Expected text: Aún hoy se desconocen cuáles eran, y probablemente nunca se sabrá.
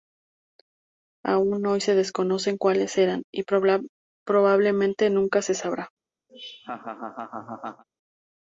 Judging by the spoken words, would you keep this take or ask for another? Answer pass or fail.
pass